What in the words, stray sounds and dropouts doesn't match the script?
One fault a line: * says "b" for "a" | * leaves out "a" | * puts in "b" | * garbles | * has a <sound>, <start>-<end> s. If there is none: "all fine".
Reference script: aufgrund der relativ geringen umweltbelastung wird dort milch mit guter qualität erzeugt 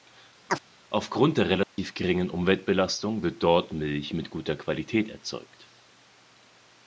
* has a chirp, 0.5-0.6 s
* has a dropout, 1.6-1.8 s